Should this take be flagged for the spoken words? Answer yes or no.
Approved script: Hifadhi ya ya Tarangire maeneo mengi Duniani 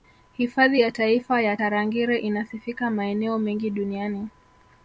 yes